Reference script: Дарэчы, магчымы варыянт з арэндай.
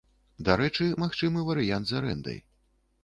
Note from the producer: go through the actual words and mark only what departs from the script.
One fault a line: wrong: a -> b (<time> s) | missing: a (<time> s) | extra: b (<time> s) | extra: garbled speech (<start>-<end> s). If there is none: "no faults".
no faults